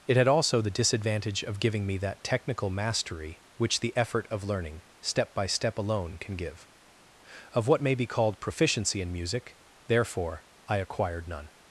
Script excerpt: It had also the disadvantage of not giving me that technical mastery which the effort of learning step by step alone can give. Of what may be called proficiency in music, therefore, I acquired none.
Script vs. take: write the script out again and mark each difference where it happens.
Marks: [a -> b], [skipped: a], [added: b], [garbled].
It had also the disadvantage of [skipped: not] giving me that technical mastery which the effort of learning step by step alone can give. Of what may be called proficiency in music, therefore, I acquired none.